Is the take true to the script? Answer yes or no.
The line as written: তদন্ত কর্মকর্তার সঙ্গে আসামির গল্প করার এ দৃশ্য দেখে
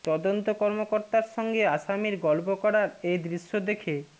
yes